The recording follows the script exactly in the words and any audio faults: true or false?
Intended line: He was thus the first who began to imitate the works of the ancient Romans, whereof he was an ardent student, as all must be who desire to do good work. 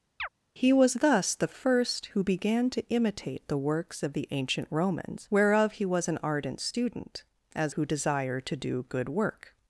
false